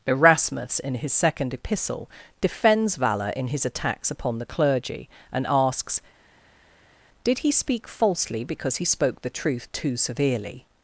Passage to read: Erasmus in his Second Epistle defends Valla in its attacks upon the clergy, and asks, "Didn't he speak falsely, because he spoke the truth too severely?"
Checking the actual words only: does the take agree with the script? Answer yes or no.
no